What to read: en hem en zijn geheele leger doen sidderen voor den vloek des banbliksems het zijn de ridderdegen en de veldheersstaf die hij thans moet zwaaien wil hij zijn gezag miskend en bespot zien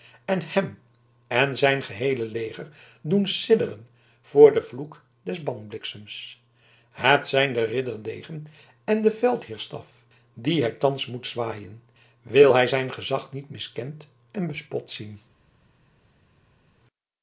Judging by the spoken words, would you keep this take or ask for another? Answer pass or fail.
fail